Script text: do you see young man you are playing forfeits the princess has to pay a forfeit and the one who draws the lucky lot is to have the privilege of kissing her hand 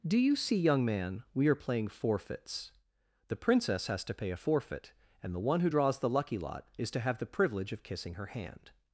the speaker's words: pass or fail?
fail